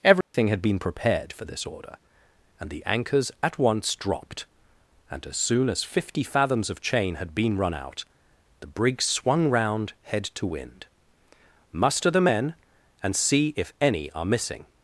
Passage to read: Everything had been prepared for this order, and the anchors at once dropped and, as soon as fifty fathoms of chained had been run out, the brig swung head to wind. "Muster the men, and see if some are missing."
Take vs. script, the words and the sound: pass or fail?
fail